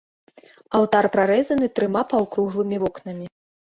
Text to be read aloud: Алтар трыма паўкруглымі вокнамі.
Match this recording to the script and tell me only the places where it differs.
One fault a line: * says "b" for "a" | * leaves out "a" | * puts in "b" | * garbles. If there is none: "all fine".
* puts in "прарэзаны"